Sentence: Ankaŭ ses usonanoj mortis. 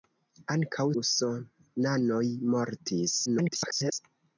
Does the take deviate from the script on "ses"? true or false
true